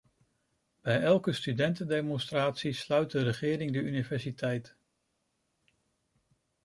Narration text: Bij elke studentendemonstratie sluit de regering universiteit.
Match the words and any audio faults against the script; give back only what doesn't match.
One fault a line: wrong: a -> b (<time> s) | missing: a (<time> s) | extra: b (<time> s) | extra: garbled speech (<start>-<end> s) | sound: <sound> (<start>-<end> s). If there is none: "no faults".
extra: de (3.7 s)